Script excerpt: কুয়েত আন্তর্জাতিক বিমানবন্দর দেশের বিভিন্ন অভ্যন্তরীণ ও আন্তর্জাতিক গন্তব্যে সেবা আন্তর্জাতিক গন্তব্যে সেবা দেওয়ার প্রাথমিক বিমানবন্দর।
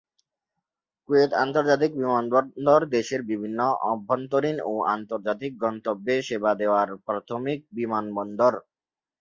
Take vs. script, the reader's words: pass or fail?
fail